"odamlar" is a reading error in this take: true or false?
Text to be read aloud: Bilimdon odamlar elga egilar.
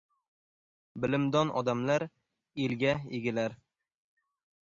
false